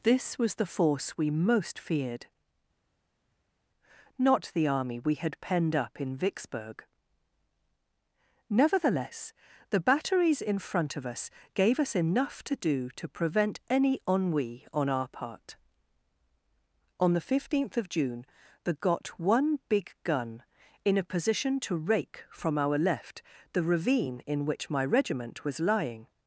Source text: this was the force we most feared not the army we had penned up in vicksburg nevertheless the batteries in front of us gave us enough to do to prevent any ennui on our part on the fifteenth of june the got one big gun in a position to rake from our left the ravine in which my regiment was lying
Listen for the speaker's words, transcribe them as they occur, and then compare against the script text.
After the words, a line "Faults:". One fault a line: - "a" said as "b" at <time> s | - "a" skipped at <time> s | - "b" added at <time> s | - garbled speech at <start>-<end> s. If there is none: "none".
this was the force we most feared not the army we had penned up in vicksburg nevertheless the batteries in front of us gave us enough to do to prevent any ennui on our part on the fifteenth of june the got one big gun in a position to rake from our left the ravine in which my regiment was lying
Faults:
none